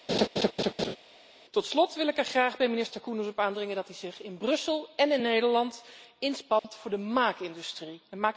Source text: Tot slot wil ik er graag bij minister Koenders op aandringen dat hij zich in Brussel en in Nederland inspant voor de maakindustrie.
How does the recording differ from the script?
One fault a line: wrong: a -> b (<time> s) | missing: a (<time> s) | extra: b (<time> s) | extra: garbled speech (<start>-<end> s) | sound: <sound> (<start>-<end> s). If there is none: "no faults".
sound: laugh (0.1-1.0 s)
sound: dropout (6.6-6.6 s)